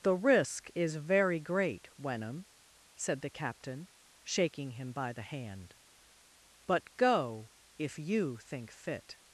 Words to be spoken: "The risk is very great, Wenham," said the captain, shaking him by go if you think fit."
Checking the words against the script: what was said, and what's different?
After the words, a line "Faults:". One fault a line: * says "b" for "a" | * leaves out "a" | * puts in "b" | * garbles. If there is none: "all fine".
"The risk is very great, Wenham," said the captain, shaking him by the hand; "but go if you think fit."
Faults:
* puts in "the hand but"